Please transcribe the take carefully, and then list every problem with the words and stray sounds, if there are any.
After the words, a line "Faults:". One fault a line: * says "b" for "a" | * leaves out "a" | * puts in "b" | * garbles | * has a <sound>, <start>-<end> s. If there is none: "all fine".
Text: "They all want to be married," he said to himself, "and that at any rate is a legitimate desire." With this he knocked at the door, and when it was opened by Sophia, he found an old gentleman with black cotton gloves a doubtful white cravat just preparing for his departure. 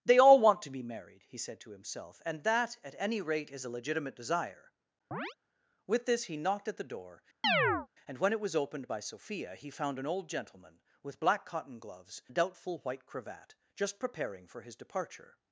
"They all want to be married," he said to himself, "and that at any rate is a legitimate desire." With this he knocked at the door, and when it was opened by Sophia, he found an old gentleman with black cotton gloves a doubtful white cravat just preparing for his departure.
Faults:
* has a chirp, 5.1-5.4 s
* has a chirp, 7.4-7.9 s